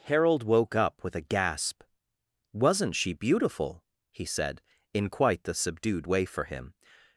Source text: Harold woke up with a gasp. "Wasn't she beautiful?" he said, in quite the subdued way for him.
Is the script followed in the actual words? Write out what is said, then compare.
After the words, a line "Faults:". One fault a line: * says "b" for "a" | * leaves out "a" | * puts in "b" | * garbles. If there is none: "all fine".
Harold woke up with a gasp. "Wasn't she beautiful?" he said, in quite the subdued way for him.
Faults:
all fine